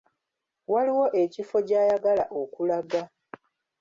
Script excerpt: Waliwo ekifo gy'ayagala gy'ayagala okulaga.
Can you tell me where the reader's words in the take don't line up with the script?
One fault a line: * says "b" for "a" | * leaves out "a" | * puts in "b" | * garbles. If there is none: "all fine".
* leaves out "gy'ayagala"